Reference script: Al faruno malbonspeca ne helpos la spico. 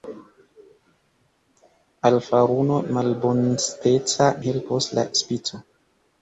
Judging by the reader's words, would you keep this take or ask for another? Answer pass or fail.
fail